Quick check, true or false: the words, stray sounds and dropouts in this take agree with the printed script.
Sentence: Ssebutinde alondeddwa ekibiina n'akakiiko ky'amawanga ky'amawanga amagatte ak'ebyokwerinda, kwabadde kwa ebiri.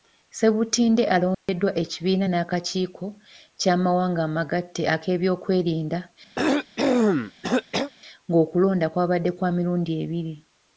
false